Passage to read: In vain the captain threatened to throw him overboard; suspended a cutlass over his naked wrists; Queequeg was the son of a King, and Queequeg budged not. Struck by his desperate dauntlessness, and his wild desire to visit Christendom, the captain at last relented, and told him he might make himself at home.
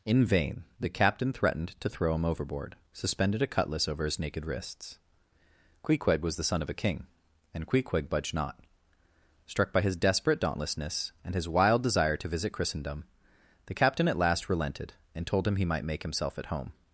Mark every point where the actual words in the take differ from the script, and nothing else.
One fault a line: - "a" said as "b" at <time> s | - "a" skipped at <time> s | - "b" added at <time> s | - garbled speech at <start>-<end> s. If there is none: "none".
none